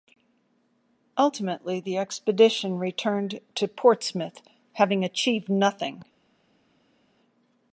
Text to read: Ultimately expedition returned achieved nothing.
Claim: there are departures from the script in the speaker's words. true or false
true